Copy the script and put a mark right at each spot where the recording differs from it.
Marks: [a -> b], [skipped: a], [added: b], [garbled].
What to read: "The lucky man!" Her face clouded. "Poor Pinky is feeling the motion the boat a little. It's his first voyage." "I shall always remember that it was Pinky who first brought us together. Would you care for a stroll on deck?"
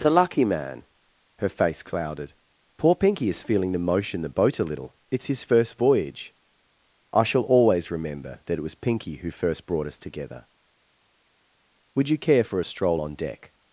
"The lucky man!" Her face clouded. "Poor Pinky is feeling the motion the boat a little. It's his first voyage." "I shall always remember that it was Pinky who first brought us together. Would you care for a stroll on deck?"